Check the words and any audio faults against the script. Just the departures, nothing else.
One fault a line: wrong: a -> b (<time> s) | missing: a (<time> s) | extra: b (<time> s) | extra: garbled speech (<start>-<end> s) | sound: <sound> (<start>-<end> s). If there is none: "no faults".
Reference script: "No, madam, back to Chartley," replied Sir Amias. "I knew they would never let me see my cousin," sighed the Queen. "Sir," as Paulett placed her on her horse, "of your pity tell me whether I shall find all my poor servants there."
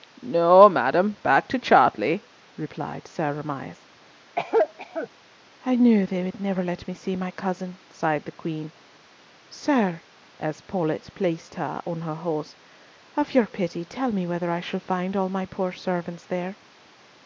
sound: cough (4.4-5.1 s)